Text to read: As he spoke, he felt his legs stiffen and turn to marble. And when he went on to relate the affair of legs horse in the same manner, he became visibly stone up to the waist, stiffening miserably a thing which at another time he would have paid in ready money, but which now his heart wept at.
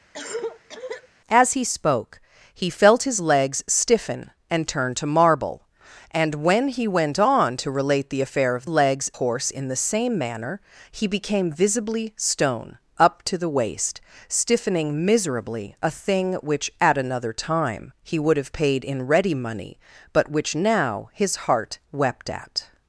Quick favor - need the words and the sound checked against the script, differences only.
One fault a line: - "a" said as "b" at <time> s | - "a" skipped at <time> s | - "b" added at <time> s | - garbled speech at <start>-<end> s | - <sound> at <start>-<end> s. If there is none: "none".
- cough at 0.1-1.1 s